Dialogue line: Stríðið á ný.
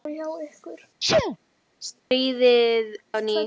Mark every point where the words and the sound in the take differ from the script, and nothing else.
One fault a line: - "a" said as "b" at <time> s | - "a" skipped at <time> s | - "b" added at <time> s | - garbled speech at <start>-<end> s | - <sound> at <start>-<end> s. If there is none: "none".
- sneeze at 1.0-1.4 s
- dropout at 2.0-2.1 s